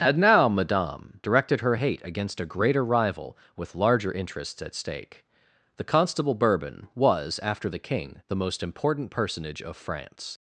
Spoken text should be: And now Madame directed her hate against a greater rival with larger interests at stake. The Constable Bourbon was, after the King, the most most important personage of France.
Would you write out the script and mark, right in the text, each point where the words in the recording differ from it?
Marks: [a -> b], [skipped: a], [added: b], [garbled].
And now Madame directed her hate against a greater rival with larger interests at stake. The Constable Bourbon was, after the King, the most [skipped: most] important personage of France.